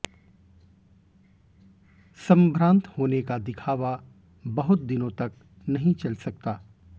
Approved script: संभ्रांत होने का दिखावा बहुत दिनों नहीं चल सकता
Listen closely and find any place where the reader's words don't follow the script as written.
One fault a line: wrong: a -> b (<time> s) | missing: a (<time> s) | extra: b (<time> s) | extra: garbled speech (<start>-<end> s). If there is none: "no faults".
extra: तक (5.1 s)